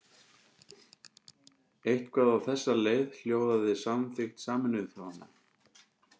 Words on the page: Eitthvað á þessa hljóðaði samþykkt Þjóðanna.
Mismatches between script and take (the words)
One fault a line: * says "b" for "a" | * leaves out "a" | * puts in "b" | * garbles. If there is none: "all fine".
* puts in "leið"
* puts in "Sameinuðu"